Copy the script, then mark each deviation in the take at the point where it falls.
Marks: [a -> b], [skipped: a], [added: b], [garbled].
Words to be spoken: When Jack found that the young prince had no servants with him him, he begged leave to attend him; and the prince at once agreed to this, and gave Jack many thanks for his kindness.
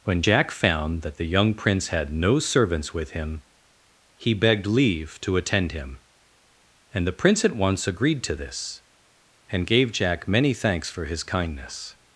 When Jack found that the young prince had no servants with him [skipped: him,] he begged leave to attend him; and the prince at once agreed to this, and gave Jack many thanks for his kindness.